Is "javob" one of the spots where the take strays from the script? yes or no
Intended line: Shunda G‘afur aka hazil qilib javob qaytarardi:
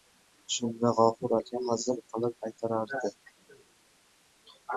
yes